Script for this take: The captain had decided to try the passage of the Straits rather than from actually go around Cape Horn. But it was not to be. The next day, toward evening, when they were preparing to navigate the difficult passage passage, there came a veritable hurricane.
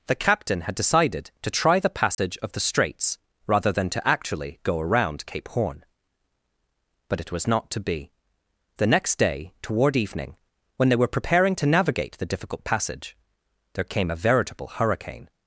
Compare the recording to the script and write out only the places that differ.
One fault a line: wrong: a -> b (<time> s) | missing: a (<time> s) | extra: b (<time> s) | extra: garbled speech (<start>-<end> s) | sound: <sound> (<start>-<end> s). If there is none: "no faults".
sound: dropout (2.1-2.2 s)
wrong: from -> to (3.9 s)
missing: passage (13.2 s)